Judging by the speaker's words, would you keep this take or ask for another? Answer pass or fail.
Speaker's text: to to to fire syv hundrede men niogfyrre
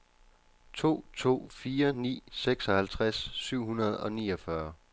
fail